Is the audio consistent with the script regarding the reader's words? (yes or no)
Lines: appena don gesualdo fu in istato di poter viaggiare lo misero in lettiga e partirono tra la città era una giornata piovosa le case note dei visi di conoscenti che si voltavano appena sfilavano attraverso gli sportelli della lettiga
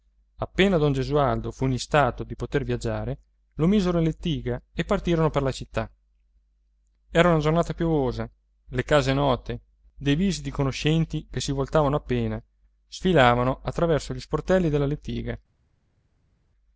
no